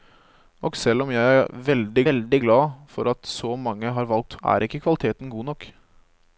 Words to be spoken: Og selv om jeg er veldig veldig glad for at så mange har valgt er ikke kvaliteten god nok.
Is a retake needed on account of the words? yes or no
no